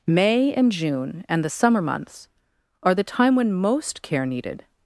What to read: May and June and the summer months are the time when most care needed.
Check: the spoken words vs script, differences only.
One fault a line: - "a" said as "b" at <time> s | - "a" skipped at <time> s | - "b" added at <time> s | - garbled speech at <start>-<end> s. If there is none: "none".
none